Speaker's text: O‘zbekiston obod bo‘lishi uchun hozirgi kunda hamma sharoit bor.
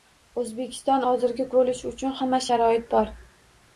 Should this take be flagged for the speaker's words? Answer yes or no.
yes